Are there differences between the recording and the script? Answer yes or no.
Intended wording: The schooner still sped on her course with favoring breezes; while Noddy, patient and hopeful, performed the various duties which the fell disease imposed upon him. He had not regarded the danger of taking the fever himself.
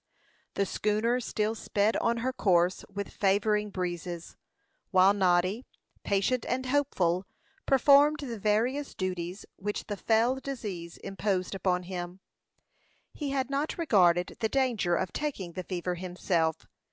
no